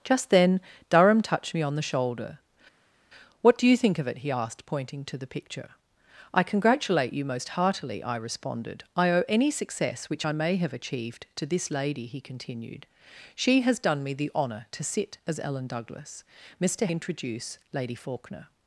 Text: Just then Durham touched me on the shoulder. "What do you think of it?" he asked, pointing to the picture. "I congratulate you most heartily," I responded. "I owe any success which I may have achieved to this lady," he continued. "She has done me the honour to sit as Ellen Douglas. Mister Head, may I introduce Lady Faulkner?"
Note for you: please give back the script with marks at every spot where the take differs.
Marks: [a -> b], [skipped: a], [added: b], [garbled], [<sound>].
Just then Durham touched me on the shoulder. "What do you think of it?" he asked, pointing to the picture. "I congratulate you most heartily," I responded. "I owe any success which I may have achieved to this lady," he continued. "She has done me the honour to sit as Ellen Douglas. Mister [skipped: Head, may I] introduce Lady Faulkner?"